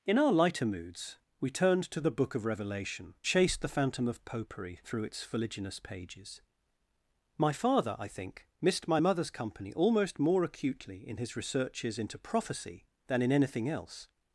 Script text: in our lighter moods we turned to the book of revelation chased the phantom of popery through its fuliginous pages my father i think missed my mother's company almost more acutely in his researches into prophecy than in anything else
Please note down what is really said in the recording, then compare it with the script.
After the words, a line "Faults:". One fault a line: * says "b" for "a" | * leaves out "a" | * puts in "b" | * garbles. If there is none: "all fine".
in our lighter moods we turned to the book of revelation chased the phantom of popery through its fuliginous pages my father i think missed my mother's company almost more acutely in his researches into prophecy than in anything else
Faults:
all fine